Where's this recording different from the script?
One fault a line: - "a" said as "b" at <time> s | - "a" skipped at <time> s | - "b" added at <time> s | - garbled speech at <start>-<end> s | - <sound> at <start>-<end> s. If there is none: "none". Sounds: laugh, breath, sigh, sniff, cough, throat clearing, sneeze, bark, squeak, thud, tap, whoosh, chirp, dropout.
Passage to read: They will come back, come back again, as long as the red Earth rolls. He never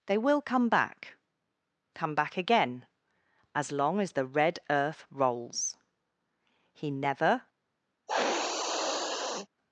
- sniff at 8.1-9.5 s